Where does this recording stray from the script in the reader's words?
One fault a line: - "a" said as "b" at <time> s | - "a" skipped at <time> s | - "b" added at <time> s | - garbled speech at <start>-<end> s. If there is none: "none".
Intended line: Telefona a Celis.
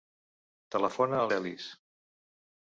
none